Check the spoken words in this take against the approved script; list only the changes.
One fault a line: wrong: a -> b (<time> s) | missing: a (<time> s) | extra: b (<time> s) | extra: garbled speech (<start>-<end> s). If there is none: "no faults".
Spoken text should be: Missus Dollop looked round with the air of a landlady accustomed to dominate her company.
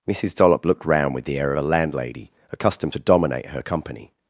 no faults